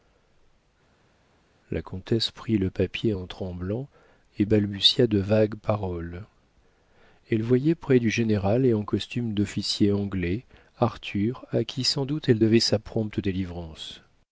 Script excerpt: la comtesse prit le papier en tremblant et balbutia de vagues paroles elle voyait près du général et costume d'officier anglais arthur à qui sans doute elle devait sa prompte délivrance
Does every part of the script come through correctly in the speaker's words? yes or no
no